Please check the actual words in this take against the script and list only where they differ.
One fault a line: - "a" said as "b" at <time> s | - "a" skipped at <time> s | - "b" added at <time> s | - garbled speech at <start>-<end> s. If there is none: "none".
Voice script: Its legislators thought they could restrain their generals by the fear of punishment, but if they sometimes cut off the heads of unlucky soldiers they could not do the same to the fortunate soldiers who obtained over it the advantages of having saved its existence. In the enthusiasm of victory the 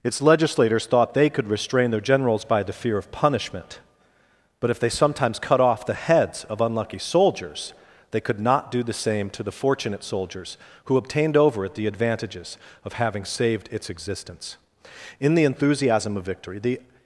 none